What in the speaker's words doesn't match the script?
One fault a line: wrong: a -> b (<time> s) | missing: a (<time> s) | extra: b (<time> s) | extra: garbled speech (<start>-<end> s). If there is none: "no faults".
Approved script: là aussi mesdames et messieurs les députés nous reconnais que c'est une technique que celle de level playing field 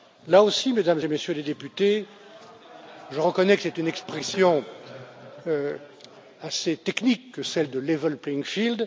wrong: nous -> je (3.1 s)
extra: expression assez (3.9 s)